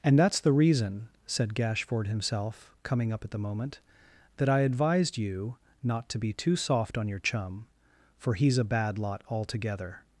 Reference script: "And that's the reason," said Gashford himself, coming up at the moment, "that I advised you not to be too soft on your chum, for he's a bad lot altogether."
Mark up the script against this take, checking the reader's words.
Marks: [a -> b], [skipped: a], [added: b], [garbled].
"And that's the reason," said Gashford himself, coming up at the moment, "that I advised you not to be too soft on your chum, for he's a bad lot altogether."